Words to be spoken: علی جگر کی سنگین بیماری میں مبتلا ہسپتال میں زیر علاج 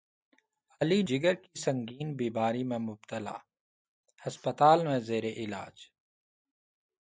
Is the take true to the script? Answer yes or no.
yes